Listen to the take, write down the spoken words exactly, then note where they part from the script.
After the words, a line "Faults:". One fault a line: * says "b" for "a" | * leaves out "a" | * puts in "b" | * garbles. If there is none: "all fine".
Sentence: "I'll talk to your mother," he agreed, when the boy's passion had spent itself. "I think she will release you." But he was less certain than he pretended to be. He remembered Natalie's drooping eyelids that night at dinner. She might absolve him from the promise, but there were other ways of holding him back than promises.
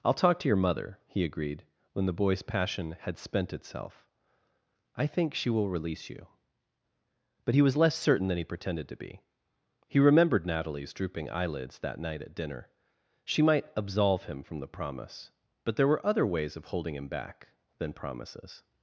"I'll talk to your mother," he agreed, when the boy's passion had spent itself. "I think she will release you." But he was less certain than he pretended to be. He remembered Natalie's drooping eyelids that night at dinner. She might absolve him from the promise, but there were other ways of holding him back than promises.
Faults:
all fine